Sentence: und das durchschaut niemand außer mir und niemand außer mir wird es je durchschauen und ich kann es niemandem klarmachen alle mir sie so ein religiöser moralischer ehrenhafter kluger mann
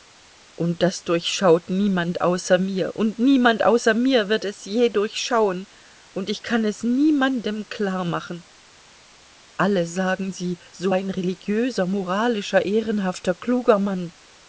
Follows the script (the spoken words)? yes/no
no